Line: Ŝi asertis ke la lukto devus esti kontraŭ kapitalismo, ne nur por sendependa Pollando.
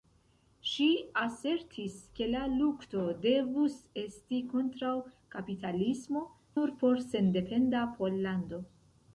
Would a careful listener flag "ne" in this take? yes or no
yes